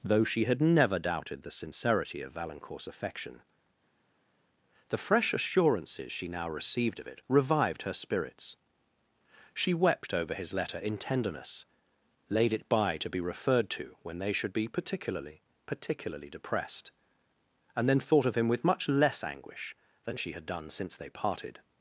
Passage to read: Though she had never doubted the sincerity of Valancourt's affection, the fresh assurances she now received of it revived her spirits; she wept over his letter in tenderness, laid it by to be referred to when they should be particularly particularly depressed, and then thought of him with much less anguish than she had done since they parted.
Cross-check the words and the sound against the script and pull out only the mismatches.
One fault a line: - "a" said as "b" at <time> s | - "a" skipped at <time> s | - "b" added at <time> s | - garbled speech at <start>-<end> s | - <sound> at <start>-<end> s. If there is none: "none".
none